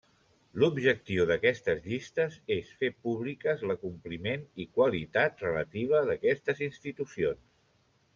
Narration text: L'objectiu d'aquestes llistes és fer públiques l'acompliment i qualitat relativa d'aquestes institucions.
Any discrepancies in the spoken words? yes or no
no